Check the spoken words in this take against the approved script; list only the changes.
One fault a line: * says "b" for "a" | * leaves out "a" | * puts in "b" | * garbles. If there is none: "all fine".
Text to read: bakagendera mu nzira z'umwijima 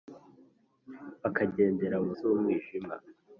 * leaves out "nzira"